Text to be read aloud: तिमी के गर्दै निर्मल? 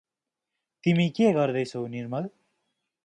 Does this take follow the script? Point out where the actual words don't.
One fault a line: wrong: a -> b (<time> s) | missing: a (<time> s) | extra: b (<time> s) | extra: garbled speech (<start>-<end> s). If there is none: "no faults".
extra: छौ (1.6 s)